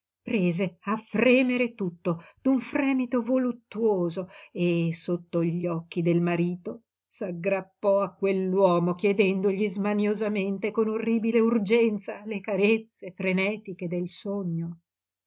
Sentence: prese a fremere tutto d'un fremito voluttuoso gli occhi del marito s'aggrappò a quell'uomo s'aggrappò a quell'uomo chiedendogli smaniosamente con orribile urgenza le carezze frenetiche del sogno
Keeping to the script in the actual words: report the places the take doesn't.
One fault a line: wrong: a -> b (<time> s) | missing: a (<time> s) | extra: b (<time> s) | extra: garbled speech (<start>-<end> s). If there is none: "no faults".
extra: e sotto (4.5 s)
missing: s'aggrappò a quell'uomo (8.9 s)